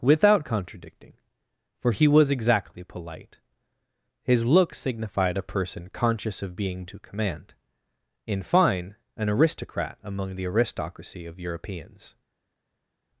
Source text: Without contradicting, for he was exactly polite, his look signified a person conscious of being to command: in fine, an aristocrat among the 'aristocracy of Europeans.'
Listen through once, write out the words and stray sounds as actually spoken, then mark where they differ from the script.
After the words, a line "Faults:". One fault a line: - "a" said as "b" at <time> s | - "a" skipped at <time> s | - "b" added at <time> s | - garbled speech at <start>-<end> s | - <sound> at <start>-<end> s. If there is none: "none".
Without contradicting, for he was exactly polite, his look signified a person conscious of being to command: in fine, an aristocrat among the 'aristocracy of Europeans.'
Faults:
none